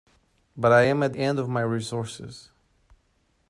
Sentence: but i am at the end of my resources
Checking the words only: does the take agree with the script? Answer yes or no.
no